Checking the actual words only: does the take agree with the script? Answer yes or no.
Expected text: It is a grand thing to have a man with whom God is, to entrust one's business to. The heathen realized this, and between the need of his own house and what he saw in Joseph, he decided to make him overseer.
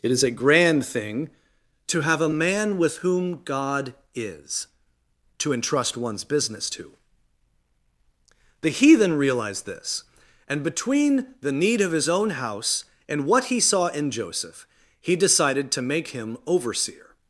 yes